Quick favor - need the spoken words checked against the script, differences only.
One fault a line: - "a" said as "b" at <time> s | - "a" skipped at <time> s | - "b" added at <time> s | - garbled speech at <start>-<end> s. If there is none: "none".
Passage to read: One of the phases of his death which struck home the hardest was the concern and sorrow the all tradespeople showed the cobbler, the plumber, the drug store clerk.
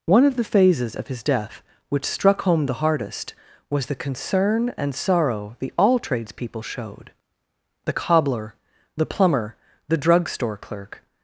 none